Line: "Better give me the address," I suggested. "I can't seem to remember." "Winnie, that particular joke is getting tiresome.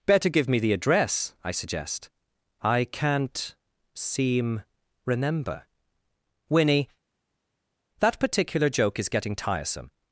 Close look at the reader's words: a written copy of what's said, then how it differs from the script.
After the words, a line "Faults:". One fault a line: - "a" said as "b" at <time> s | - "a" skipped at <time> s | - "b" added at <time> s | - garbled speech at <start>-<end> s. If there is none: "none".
"Better give me the address," I suggest. "I can't seem remember." "Winnie, that particular joke is getting tiresome.
Faults:
- "suggested" said as "suggest" at 1.5 s
- "to" skipped at 4.6 s